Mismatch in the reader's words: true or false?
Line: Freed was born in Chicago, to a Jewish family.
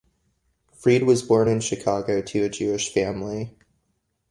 false